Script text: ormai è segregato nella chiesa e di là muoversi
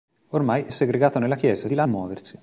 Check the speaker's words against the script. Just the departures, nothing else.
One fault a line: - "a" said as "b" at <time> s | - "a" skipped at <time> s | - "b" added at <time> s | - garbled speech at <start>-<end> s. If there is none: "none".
none